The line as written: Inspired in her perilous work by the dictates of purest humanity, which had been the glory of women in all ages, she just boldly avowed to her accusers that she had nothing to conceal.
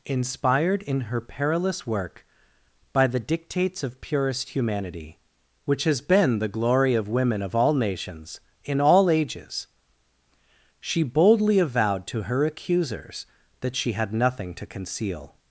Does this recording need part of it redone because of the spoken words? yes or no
yes